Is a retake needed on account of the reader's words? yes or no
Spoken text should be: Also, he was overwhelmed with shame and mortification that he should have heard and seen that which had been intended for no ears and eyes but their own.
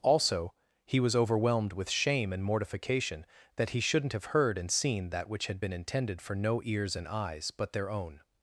yes